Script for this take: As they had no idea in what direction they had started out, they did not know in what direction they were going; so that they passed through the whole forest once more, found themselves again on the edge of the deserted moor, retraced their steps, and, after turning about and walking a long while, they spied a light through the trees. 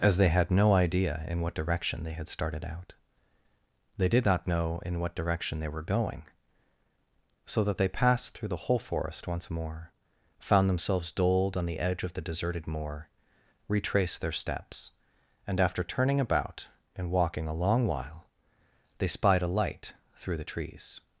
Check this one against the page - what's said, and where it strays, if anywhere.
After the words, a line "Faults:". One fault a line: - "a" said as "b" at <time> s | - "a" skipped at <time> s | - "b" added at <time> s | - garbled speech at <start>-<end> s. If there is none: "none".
As they had no idea in what direction they had started out, they did not know in what direction they were going; so that they passed through the whole forest once more, found themselves doled on the edge of the deserted moor, retraced their steps, and, after turning about and walking a long while, they spied a light through the trees.
Faults:
- "again" said as "doled" at 11.1 s